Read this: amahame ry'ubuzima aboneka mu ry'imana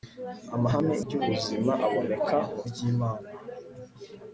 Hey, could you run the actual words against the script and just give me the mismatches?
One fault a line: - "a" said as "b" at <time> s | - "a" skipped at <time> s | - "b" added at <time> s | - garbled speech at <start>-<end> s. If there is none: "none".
none